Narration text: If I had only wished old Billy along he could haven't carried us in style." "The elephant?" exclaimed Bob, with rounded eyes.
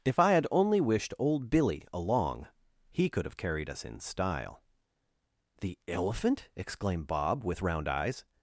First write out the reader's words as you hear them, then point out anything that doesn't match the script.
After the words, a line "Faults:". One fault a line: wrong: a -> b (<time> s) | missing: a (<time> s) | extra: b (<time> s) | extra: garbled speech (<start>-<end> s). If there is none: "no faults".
If I had only wished old Billy along he could have carried us in style." "The elephant?" exclaimed Bob, with round eyes.
Faults:
wrong: haven't -> have (3.2 s)
wrong: rounded -> round (7.6 s)